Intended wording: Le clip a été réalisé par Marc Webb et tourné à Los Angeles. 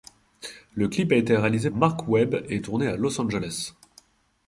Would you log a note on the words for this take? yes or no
yes